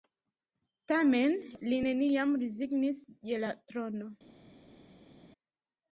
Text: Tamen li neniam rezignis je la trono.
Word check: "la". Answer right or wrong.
right